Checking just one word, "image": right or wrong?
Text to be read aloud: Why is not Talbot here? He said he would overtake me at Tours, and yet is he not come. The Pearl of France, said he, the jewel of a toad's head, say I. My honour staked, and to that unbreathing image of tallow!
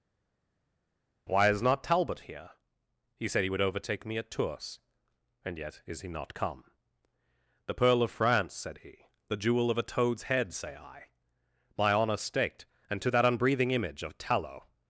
right